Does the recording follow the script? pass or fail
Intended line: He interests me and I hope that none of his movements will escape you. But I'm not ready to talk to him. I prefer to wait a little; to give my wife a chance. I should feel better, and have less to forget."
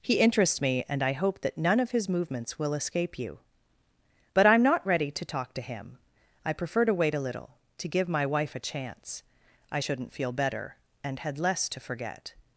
fail